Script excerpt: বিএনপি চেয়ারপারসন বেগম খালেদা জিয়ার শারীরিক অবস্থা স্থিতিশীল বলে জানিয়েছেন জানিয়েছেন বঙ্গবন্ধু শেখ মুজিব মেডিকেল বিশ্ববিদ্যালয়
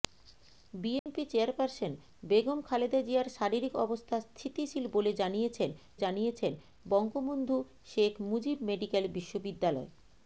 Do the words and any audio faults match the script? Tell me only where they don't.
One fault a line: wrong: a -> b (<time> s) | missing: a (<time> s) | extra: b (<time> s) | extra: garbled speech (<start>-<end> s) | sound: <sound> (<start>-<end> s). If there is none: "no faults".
sound: dropout (1.0-1.1 s)